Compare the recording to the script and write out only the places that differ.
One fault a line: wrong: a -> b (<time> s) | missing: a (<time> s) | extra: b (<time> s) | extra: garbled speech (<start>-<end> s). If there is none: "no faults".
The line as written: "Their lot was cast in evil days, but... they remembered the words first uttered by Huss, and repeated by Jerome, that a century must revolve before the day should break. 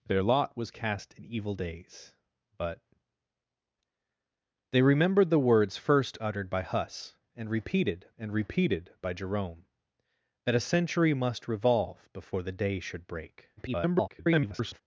extra: and repeated (8.2 s)
extra: garbled speech (13.6-14.8 s)